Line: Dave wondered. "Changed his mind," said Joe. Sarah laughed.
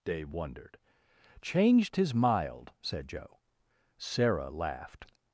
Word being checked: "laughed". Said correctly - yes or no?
yes